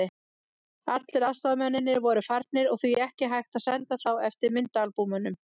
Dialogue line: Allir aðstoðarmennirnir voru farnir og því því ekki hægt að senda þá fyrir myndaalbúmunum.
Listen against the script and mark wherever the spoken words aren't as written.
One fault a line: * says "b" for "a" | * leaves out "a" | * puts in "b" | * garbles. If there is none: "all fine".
* leaves out "því"
* says "eftir" for "fyrir"